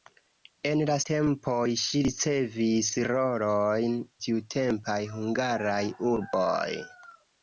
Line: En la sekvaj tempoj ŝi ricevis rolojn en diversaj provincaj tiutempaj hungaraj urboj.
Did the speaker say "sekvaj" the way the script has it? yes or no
no